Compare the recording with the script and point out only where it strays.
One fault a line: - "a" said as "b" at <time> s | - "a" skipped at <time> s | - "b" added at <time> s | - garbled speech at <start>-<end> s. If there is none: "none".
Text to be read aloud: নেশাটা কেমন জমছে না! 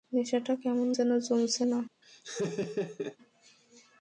- "যেন" added at 0.9 s